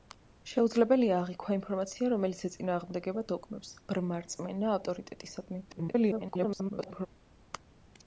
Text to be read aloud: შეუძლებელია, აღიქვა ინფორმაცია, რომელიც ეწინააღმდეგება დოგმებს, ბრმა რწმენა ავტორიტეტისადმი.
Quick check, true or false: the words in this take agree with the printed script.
false